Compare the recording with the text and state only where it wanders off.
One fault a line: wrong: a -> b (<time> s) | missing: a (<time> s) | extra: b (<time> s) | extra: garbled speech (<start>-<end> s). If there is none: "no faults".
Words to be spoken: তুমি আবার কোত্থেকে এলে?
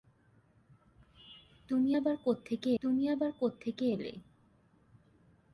extra: তুমি আবার কোত্থেকে (2.8 s)